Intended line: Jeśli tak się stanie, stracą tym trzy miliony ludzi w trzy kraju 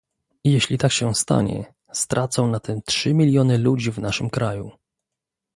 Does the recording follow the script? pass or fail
fail